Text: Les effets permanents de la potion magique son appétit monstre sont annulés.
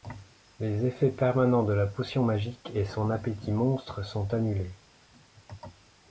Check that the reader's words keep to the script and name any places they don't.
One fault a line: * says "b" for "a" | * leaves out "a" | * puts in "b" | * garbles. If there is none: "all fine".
* puts in "et"